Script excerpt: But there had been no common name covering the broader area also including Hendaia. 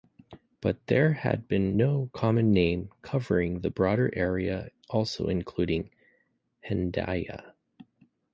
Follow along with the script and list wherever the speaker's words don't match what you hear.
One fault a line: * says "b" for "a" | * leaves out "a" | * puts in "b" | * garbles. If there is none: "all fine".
all fine